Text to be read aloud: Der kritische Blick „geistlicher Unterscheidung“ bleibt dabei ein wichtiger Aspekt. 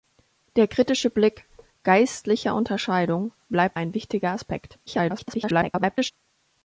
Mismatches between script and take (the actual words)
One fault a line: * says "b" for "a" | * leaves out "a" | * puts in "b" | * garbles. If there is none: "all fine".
* leaves out "dabei"
* garbles